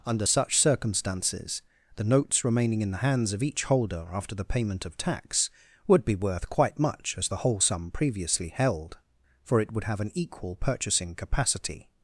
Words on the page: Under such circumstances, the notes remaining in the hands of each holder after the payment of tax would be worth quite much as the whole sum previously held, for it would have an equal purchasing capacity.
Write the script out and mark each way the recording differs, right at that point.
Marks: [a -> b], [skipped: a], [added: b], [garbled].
Under such circumstances, the notes remaining in the hands of each holder after the payment of tax would be worth quite much as the whole sum previously held, for it would have an equal purchasing capacity.